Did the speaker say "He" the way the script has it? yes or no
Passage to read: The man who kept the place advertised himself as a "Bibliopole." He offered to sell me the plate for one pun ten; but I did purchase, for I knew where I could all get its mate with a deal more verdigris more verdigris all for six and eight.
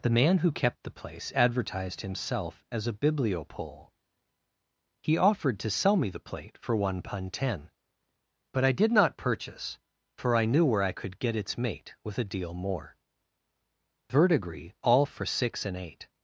yes